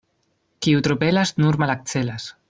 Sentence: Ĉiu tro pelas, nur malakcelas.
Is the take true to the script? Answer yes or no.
no